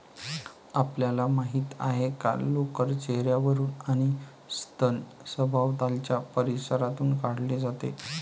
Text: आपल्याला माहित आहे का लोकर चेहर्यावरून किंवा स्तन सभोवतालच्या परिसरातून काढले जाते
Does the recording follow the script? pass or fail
fail